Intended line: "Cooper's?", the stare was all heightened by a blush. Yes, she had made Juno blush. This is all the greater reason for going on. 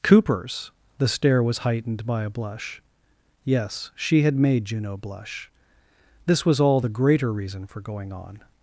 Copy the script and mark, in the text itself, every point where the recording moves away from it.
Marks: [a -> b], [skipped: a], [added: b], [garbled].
"Cooper's?", the stare was [skipped: all] heightened by a blush. Yes, she had made Juno blush. This [is -> was] all the greater reason for going on.